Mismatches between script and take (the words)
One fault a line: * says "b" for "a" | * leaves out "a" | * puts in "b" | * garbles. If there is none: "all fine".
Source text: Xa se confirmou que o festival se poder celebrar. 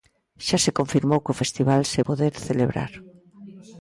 all fine